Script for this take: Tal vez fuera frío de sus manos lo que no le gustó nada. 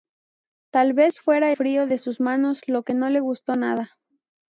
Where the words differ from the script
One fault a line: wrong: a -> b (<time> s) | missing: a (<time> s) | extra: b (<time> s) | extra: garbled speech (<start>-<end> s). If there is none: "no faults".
no faults